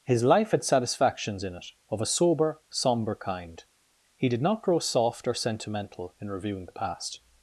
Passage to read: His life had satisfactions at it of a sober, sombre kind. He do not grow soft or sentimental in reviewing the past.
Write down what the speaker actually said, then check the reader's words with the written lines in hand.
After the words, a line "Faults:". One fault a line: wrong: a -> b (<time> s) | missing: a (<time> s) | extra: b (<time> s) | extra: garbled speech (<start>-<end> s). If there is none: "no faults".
His life had satisfactions in it of a sober, sombre kind. He did not grow soft or sentimental in reviewing the past.
Faults:
wrong: at -> in (1.4 s)
wrong: do -> did (4.3 s)